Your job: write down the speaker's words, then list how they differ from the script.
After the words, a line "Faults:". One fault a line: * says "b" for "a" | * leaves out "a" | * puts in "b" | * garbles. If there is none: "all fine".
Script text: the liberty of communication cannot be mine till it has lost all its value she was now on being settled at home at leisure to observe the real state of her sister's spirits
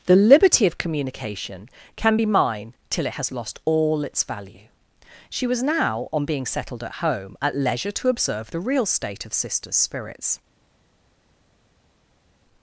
the liberty of communication can be mine till it has lost all its value she was now on being settled at home at leisure to observe the real state of sister's spirits
Faults:
* says "can" for "cannot"
* leaves out "her"